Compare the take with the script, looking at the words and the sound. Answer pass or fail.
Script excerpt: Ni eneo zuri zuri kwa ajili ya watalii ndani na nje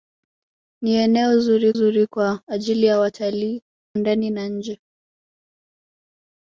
pass